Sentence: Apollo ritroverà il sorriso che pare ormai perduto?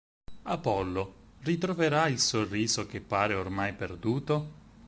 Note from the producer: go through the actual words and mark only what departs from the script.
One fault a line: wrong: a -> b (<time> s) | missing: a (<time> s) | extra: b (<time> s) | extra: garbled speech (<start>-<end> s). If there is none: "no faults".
no faults